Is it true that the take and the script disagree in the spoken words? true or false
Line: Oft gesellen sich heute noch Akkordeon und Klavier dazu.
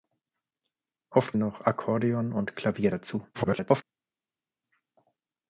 true